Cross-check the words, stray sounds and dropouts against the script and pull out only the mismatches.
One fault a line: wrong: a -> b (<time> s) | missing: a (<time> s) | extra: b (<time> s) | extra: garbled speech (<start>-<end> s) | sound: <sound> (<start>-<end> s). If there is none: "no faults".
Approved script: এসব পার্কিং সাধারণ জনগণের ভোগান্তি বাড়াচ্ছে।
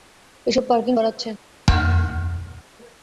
missing: সাধারণ জনগণের ভোগান্তি (0.9 s)
sound: thud (1.7-2.6 s)